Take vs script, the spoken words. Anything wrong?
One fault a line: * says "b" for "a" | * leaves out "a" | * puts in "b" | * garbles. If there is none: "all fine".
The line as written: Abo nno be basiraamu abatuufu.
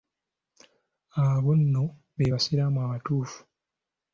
all fine